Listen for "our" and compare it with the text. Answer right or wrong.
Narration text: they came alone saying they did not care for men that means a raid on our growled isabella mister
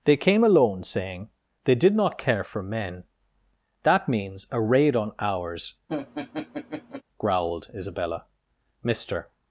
wrong